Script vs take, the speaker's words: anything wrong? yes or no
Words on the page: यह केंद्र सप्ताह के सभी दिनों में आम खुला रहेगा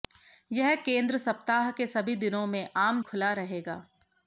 no